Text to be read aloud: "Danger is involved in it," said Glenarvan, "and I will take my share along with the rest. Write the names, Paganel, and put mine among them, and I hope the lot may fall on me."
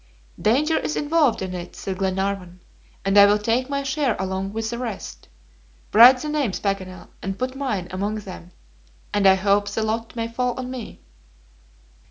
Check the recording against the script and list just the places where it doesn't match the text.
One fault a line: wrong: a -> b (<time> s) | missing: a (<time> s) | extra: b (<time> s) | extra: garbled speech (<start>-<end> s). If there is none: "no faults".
no faults